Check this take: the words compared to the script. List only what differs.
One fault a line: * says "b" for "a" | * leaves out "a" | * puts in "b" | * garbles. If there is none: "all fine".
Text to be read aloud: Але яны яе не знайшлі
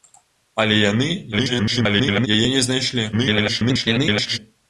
* garbles
* garbles